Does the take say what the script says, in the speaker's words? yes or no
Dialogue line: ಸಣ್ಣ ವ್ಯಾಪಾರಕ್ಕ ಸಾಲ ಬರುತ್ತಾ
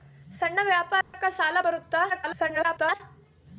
no